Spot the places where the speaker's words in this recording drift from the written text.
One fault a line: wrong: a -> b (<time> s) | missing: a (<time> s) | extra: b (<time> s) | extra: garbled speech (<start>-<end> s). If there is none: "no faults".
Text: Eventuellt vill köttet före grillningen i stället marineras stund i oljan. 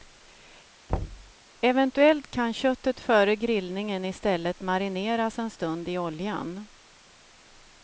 wrong: vill -> kan (2.3 s)
extra: en (5.4 s)